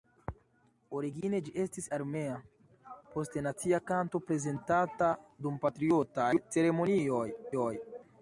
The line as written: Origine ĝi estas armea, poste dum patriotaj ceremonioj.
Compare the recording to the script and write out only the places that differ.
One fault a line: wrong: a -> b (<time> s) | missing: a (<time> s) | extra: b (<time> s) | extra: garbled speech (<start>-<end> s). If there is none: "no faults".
wrong: estas -> estis (1.6 s)
extra: nacia kanto prezentata (3.5 s)